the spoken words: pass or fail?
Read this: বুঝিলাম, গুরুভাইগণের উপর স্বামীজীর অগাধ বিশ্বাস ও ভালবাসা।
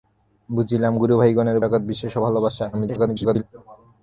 fail